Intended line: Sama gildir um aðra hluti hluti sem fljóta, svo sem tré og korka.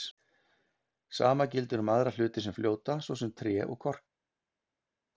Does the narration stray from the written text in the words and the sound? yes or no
yes